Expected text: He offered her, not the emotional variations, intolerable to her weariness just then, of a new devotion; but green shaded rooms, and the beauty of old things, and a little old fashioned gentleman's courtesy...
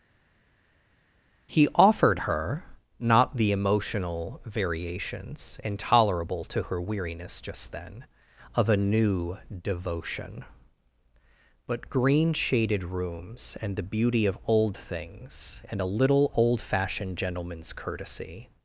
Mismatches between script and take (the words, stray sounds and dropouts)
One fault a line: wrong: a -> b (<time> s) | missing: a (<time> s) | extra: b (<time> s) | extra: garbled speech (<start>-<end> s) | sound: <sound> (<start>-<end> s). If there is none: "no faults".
no faults